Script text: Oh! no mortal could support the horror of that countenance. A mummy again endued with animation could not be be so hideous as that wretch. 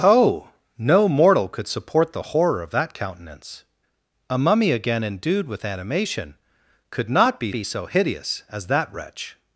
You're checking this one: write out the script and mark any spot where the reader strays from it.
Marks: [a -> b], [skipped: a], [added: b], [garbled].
Oh! no mortal could support the horror of that countenance. A mummy again endued with animation could not be be so hideous as that wretch.